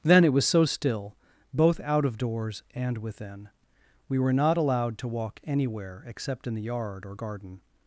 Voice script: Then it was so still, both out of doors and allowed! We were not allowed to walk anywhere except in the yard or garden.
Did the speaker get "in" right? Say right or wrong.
right